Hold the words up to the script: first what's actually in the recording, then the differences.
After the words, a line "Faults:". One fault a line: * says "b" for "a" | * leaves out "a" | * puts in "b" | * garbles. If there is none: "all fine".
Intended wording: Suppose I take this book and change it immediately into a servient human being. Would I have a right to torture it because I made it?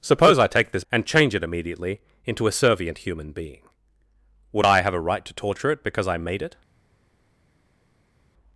Suppose I take this and change it immediately into a servient human being. Would I have a right to torture it because I made it?
Faults:
* leaves out "book"